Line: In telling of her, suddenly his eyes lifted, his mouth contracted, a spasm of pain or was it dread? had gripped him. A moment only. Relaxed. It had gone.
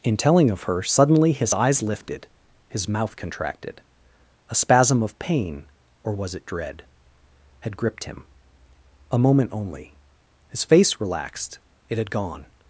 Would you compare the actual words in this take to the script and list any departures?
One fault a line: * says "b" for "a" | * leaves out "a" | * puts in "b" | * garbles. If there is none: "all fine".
* puts in "His face"